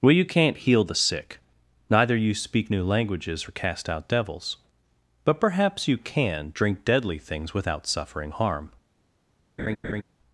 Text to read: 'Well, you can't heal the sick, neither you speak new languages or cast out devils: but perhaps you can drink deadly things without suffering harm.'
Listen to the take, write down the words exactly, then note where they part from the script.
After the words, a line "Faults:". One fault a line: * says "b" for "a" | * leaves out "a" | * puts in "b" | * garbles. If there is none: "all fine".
'Well, you can't heal the sick, neither you speak new languages or cast out devils: but perhaps you can drink deadly things without suffering harm.'
Faults:
all fine